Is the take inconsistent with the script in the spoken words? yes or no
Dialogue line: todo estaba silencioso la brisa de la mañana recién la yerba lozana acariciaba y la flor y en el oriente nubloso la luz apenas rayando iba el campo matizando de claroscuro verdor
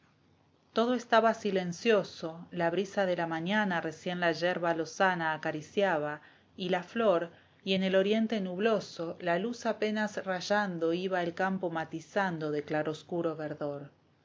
no